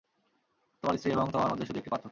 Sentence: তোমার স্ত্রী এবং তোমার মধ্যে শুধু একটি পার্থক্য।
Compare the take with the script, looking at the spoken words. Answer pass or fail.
pass